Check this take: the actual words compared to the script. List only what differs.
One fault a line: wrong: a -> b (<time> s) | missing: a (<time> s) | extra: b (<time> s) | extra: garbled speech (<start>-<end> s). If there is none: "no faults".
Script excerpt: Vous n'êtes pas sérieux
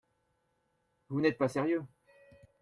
no faults